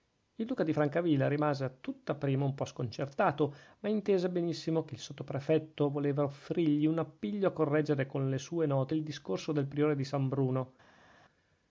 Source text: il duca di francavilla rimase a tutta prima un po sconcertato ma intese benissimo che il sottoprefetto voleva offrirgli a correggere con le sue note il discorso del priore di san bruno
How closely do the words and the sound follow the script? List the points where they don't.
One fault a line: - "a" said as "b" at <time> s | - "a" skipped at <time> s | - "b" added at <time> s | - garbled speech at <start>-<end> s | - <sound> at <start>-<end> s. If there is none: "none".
- "un appiglio" added at 6.9 s